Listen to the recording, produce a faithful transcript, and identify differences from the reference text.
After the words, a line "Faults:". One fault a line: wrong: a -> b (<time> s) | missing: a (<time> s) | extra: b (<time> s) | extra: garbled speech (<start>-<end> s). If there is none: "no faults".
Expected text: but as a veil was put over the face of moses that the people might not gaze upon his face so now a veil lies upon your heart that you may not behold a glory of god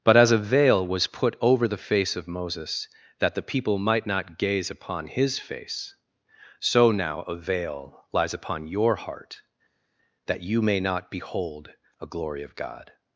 but as a veil was put over the face of moses that the people might not gaze upon his face so now a veil lies upon your heart that you may not behold a glory of god
Faults:
no faults